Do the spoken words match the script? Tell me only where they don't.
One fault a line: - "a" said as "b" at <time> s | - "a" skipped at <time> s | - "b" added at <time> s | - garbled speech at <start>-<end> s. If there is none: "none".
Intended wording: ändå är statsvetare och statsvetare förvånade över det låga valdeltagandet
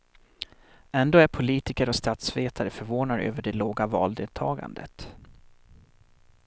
- "statsvetare" said as "politiker" at 1.3 s